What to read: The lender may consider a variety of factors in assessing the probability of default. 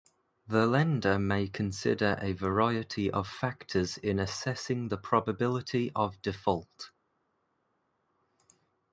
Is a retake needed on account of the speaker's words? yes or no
no